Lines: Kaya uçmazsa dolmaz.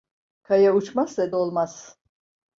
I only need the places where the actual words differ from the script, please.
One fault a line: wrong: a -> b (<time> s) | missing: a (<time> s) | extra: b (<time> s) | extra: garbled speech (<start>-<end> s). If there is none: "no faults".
no faults